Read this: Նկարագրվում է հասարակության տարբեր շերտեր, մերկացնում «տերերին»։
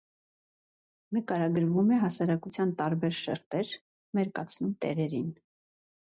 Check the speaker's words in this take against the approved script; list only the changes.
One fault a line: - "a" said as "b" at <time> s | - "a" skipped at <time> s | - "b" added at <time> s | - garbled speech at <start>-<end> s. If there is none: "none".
none